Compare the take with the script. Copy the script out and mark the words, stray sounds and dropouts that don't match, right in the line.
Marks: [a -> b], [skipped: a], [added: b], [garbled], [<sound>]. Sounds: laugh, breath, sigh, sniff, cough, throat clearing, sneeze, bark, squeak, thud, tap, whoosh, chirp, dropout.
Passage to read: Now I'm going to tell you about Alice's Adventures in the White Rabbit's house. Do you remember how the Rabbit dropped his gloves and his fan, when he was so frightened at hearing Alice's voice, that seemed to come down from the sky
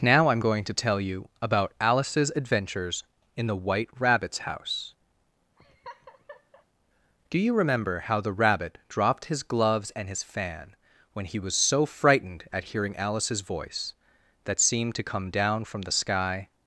Now I'm going to tell you about Alice's Adventures in the White Rabbit's house. [laugh] Do you remember how the Rabbit dropped his gloves and his fan, when he was so frightened at hearing Alice's voice, that seemed to come down from the sky